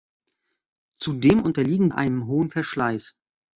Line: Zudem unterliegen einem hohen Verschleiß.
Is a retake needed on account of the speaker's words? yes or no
no